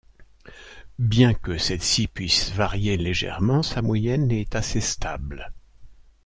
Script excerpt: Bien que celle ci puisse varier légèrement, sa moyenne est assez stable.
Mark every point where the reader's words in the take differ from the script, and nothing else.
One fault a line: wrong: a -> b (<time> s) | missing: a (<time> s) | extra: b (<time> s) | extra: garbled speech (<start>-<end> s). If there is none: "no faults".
no faults